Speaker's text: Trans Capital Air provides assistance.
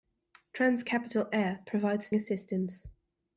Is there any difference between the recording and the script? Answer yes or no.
no